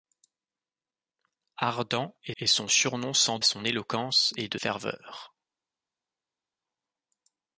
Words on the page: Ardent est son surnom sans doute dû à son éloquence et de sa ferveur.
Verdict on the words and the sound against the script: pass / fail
fail